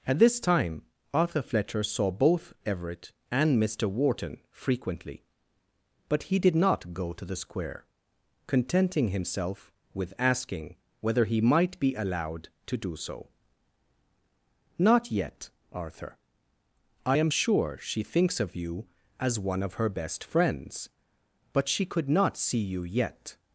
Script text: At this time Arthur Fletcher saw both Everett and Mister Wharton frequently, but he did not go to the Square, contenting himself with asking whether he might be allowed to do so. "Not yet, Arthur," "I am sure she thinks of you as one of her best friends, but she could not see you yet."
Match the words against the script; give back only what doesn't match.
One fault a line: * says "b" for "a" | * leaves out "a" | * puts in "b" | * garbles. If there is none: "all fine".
all fine